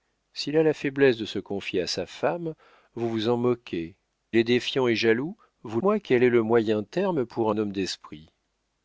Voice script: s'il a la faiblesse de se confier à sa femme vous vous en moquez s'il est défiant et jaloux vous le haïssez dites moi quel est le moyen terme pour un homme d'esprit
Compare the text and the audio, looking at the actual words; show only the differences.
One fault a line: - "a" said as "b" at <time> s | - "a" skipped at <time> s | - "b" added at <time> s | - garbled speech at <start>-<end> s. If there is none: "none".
- "s'il" skipped at 4.0 s
- "le haïssez dites" skipped at 5.8 s